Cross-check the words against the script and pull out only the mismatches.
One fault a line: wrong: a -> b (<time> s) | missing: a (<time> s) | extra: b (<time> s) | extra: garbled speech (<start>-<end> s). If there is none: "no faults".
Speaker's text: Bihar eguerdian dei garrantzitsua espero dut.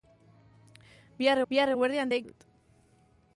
extra: bihar (1.5 s)
missing: garrantzitsua espero (2.2 s)